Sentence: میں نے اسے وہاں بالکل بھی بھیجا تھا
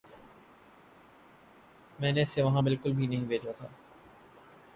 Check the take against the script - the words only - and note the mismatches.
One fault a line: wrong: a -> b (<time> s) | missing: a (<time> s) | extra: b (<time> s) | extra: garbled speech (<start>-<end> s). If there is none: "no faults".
extra: نہیں (3.1 s)